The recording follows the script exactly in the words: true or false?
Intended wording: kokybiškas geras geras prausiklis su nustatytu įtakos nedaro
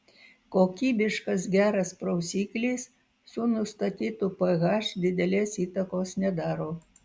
false